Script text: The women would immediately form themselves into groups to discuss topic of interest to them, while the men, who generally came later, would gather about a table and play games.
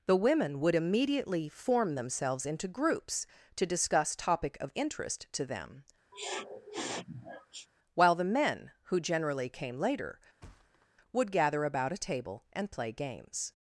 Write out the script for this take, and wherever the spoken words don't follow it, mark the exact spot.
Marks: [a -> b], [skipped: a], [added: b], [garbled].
The women would immediately form themselves into groups to discuss topic of interest to them, while the men, who generally came later, would gather about a table and play games.